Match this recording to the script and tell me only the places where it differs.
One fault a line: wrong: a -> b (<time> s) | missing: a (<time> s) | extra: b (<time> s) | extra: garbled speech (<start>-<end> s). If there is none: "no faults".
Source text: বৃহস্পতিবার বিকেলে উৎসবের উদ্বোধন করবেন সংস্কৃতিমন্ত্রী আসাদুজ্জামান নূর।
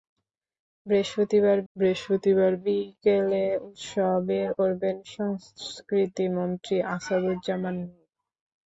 extra: বৃহস্পতিবার (1.7 s)
missing: উদ্বোধন (4.5 s)